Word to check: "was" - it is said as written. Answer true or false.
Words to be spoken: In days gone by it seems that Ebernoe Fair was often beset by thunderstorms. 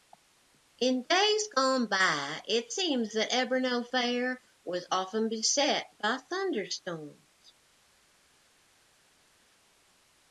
true